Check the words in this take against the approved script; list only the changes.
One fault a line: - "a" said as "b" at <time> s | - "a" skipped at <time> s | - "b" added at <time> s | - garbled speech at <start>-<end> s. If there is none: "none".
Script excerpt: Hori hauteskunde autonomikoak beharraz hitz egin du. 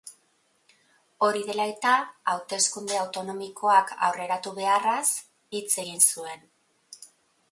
- "dela eta" added at 1.5 s
- "aurreratu" added at 4.1 s
- "du" said as "zuen" at 6.1 s